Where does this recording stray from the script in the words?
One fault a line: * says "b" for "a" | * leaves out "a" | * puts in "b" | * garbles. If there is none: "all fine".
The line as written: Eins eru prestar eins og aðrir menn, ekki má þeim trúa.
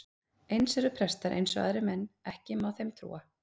all fine